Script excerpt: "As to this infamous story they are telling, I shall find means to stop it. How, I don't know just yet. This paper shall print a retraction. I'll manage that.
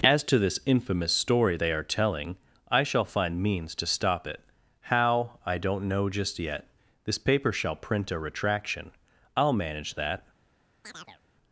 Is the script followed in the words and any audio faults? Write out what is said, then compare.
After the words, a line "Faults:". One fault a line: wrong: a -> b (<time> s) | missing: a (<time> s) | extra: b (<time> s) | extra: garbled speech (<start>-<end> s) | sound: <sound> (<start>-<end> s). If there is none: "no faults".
"As to this infamous story they are telling, I shall find means to stop it. How, I don't know just yet. This paper shall print a retraction. I'll manage that.
Faults:
sound: chirp (10.8-11.2 s)